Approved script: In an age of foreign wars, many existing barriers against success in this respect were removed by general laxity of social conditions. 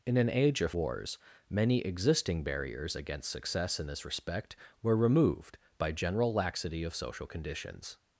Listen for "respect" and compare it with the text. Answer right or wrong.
right